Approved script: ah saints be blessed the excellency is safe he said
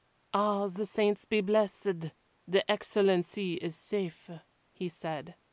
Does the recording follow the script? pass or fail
fail